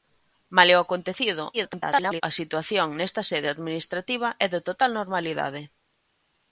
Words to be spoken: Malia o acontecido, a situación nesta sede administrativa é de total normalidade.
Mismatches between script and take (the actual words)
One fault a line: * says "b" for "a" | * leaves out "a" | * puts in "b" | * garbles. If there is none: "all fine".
* garbles